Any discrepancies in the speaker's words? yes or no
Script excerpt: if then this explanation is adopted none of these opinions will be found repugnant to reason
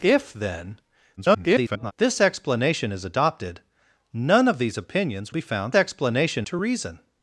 yes